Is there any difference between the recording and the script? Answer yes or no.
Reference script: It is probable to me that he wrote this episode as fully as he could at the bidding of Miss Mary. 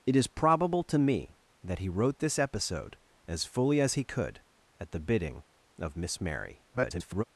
yes